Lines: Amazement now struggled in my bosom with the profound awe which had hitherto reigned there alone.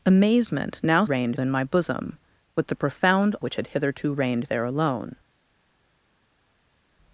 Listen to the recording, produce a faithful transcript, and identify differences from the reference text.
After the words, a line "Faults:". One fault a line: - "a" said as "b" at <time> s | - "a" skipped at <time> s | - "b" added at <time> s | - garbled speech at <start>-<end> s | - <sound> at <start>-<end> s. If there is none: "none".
Amazement now reigned in my bosom with the profound which had hitherto reigned there alone.
Faults:
- "struggled" said as "reigned" at 1.0 s
- "awe" skipped at 3.4 s